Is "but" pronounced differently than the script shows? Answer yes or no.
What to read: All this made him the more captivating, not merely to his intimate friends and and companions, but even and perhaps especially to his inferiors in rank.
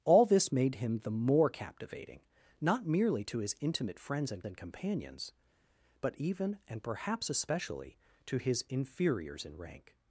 no